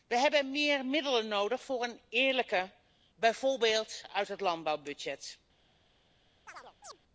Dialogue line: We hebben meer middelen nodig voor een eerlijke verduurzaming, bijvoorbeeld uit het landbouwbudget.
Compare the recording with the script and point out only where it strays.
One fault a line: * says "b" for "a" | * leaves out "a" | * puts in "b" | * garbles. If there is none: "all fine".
* leaves out "verduurzaming"